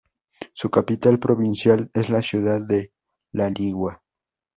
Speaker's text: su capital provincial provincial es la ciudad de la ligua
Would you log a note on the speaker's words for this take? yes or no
yes